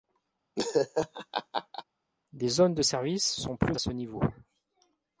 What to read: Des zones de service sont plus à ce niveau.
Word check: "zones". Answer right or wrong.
right